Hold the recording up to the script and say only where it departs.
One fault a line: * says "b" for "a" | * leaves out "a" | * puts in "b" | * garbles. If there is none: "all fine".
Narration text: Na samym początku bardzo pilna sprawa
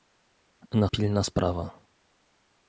* leaves out "samym początku bardzo"